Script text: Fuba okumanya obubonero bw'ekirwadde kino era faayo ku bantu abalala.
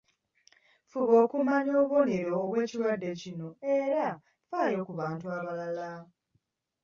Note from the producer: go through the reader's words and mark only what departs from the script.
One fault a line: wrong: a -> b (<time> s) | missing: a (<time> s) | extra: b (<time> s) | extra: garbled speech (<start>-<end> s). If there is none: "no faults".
no faults